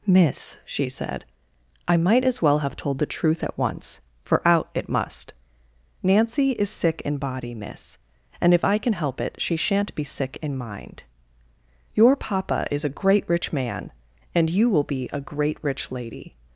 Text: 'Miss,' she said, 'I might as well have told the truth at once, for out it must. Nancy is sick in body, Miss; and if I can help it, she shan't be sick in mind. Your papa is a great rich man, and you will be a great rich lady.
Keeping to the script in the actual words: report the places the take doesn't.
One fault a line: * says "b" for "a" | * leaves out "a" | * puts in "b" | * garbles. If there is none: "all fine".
all fine